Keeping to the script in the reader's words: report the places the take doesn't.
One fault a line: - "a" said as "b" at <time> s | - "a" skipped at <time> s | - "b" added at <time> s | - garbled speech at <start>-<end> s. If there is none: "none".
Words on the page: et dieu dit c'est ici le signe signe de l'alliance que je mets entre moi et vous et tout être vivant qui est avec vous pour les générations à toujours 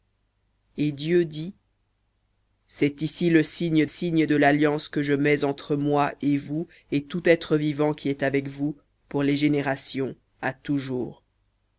none